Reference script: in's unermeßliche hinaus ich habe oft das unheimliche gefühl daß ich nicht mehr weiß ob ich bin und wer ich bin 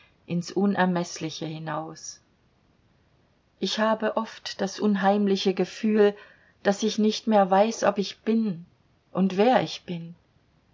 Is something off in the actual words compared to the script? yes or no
no